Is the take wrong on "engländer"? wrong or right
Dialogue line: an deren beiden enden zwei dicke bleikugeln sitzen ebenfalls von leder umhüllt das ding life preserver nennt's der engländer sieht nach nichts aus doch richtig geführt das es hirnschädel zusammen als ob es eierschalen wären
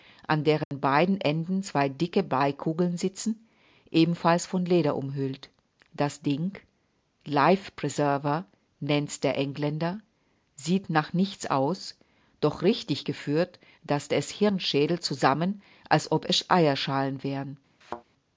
right